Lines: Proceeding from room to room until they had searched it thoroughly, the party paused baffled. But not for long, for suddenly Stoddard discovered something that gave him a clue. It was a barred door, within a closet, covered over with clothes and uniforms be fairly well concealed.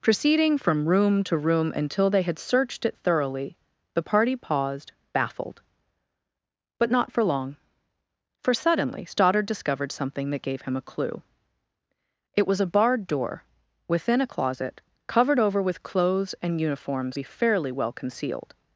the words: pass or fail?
pass